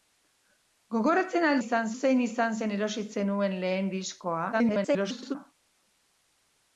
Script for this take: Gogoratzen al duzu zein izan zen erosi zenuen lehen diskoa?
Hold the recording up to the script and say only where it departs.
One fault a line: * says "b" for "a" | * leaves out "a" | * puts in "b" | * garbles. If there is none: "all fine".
* says "izan" for "duzu"
* garbles